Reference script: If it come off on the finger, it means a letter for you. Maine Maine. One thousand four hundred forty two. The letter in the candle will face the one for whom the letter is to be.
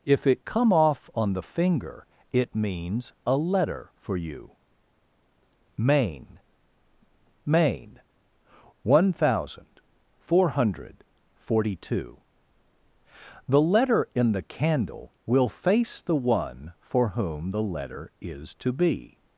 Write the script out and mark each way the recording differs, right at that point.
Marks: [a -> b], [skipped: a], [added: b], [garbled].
If it come off on the finger, it means a letter for you. Maine Maine. One thousand four hundred forty two. The letter in the candle will face the one for whom the letter is to be.